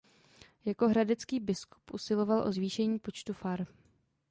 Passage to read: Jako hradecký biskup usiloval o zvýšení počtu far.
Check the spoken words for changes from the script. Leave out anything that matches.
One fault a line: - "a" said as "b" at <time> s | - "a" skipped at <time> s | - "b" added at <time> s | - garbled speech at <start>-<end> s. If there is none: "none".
none